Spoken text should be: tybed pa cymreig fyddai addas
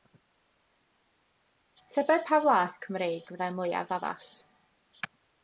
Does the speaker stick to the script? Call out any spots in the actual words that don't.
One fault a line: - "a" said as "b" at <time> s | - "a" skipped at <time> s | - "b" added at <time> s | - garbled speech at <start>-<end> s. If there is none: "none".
- "flas" added at 2.4 s
- "mwyaf" added at 3.6 s